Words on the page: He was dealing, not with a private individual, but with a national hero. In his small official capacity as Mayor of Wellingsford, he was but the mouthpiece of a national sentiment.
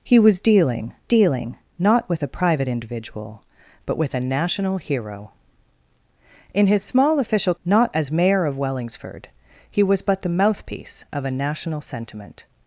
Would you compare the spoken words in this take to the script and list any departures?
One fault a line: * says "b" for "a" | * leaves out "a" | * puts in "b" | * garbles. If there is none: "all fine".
* puts in "dealing"
* says "not" for "capacity"